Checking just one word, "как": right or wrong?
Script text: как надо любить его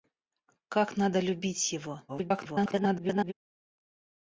right